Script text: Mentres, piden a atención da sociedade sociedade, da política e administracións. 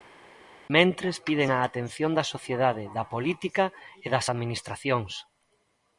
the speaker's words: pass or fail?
fail